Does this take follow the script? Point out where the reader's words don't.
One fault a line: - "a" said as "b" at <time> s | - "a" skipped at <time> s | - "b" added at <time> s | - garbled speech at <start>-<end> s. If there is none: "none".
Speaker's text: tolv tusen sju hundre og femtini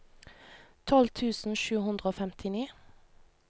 none